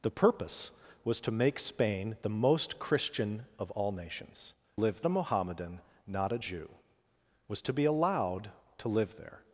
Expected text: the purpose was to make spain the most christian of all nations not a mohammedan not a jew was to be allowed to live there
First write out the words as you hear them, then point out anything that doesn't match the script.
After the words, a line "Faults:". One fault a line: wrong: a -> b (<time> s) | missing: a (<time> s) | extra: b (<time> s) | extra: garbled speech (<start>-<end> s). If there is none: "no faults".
the purpose was to make spain the most christian of all nations live a mohammedan not a jew was to be allowed to live there
Faults:
wrong: not -> live (4.7 s)